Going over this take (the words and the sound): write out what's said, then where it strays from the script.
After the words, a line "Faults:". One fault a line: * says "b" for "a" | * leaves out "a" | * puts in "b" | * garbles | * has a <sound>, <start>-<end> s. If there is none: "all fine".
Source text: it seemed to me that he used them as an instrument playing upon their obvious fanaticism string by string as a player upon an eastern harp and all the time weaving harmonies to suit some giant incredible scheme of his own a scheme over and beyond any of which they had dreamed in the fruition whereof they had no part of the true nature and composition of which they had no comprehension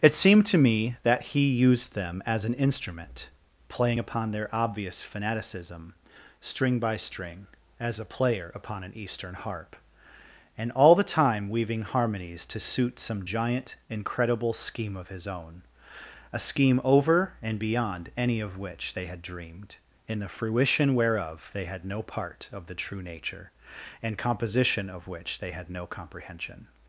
it seemed to me that he used them as an instrument playing upon their obvious fanaticism string by string as a player upon an eastern harp and all the time weaving harmonies to suit some giant incredible scheme of his own a scheme over and beyond any of which they had dreamed in the fruition whereof they had no part of the true nature and composition of which they had no comprehension
Faults:
all fine